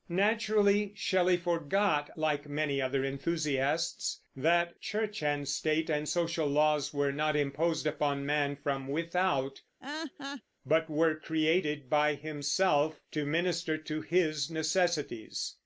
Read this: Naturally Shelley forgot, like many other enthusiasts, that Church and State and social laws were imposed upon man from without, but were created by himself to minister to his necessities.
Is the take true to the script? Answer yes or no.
no